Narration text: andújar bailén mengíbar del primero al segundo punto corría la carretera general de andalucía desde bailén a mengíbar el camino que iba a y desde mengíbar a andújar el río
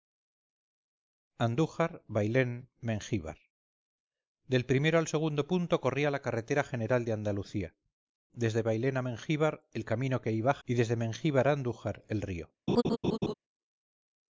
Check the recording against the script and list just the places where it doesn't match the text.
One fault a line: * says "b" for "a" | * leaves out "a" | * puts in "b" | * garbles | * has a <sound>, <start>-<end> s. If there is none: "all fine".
* has a laugh, 12.7-13.3 s